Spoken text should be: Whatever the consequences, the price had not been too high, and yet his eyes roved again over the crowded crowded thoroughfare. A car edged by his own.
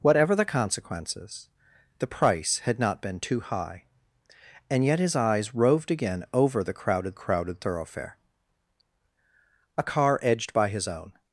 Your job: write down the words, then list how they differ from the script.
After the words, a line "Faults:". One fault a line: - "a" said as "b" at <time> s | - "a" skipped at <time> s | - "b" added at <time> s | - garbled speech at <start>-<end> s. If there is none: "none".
Whatever the consequences, the price had not been too high, and yet his eyes roved again over the crowded crowded thoroughfare. A car edged by his own.
Faults:
none